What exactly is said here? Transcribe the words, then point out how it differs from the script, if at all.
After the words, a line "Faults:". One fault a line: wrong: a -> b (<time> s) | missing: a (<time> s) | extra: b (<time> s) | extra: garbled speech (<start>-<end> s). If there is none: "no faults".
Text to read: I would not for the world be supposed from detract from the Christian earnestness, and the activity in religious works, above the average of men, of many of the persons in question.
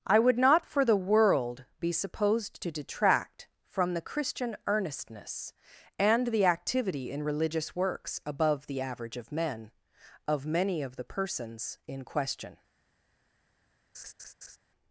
I would not for the world be supposed to detract from the Christian earnestness, and the activity in religious works, above the average of men, of many of the persons in question.
Faults:
wrong: from -> to (2.6 s)